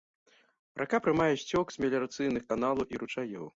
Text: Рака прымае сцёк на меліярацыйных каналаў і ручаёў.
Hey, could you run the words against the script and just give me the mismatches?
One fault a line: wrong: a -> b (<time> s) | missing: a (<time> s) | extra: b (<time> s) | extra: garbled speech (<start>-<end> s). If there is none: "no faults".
wrong: на -> з (1.8 s)